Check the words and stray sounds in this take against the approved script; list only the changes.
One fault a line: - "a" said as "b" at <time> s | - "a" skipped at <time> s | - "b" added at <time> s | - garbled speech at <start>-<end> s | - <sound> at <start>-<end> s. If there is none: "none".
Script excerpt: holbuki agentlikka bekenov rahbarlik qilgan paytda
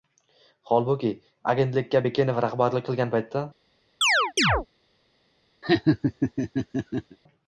- chirp at 4.0-4.7 s
- laugh at 5.6-7.2 s